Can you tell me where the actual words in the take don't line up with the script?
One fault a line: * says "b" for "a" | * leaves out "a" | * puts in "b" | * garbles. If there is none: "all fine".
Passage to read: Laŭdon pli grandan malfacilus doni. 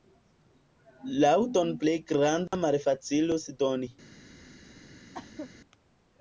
all fine